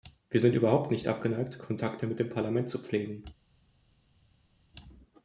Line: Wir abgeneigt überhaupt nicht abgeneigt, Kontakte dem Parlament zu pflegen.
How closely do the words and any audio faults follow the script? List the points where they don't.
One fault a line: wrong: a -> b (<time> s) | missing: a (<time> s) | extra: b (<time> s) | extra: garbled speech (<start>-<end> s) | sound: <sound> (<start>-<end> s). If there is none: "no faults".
wrong: abgeneigt -> sind (0.4 s)
extra: mit (2.1 s)